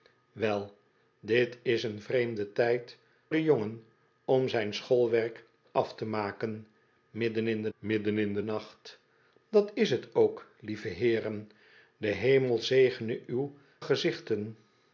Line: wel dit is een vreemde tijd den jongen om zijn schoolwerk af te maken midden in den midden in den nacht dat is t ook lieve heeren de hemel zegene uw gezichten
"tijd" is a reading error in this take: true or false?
false